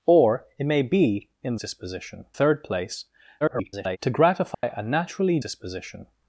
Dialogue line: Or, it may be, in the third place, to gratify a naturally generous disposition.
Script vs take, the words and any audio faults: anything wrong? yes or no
yes